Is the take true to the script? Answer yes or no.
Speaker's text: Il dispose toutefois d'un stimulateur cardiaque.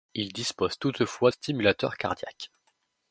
no